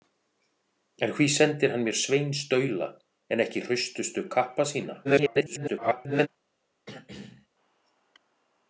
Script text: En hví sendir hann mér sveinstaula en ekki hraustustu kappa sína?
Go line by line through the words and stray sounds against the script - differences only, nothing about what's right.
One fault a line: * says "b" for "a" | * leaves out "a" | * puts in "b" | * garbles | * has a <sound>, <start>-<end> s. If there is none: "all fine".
* garbles
* has a throat clearing, 6.9-7.5 s